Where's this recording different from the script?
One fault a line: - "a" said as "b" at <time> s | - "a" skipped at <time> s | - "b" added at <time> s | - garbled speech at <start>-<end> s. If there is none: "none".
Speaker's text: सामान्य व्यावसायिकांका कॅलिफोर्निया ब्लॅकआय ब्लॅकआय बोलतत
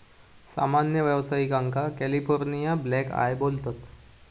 - "ब्लॅकआय" skipped at 3.4 s